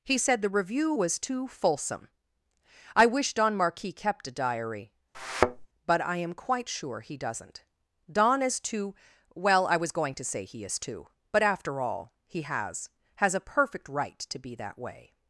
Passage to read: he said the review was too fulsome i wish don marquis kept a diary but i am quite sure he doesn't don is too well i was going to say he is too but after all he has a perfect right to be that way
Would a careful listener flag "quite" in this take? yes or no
no